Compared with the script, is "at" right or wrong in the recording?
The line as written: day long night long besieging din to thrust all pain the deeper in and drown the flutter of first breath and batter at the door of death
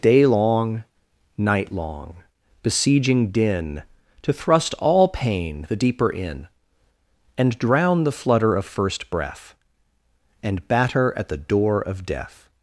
right